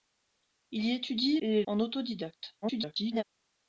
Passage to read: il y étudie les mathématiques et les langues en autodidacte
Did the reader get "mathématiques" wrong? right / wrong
wrong